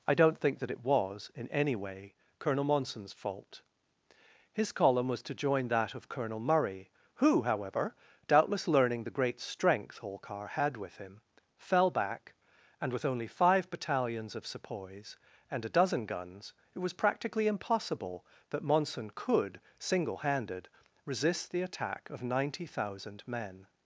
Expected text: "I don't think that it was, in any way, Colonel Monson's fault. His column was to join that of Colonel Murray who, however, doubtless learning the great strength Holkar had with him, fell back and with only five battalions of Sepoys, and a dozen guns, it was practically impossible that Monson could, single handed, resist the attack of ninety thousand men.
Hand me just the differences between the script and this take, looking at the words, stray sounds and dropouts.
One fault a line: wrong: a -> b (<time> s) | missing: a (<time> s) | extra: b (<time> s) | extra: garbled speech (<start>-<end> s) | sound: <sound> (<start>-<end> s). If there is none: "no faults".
no faults